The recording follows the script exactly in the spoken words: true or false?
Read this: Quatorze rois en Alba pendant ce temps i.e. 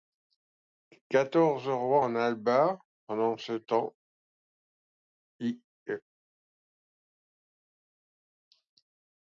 true